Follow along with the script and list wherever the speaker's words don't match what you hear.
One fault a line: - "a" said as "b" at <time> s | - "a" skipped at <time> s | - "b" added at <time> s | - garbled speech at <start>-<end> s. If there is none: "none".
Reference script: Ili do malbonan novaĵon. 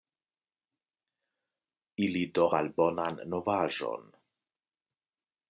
none